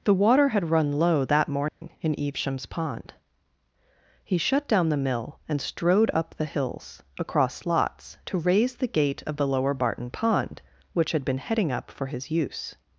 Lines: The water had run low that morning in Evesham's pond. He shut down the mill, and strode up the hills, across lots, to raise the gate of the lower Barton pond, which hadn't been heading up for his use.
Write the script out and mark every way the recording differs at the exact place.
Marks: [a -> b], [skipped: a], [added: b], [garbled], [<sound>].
The water had run low that morning [dropout] in Evesham's pond. He shut down the mill, and strode up the hills, across lots, to raise the gate of the lower Barton pond, which [hadn't -> had] been heading up for his use.